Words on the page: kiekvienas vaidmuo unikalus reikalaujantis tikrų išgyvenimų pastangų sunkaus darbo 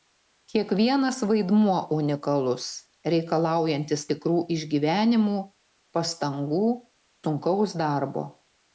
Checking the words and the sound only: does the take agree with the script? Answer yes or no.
yes